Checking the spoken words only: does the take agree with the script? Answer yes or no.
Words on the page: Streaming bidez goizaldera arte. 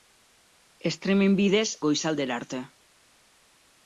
yes